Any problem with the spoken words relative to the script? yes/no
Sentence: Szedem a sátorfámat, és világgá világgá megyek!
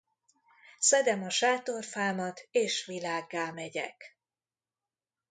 yes